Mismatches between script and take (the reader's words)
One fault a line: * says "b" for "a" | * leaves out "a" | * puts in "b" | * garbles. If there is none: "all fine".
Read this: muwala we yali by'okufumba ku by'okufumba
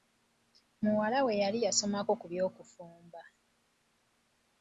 * says "yasomako" for "by'okufumba"